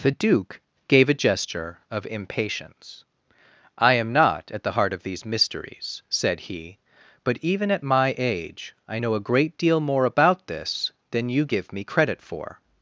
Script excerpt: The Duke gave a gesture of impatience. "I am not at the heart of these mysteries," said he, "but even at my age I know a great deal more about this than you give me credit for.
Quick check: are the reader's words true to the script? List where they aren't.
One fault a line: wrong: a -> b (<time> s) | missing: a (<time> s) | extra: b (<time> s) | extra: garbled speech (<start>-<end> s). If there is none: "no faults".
no faults